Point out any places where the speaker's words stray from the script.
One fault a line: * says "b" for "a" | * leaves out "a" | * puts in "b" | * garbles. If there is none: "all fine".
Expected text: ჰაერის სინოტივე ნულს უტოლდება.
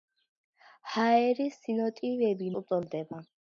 * leaves out "ნულს"